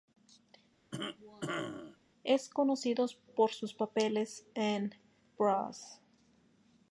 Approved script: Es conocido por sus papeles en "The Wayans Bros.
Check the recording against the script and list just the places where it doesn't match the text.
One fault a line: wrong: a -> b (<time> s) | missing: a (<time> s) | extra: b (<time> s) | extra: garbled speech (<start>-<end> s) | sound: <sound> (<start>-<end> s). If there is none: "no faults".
sound: cough (0.9-2.0 s)
missing: The Wayans (4.9 s)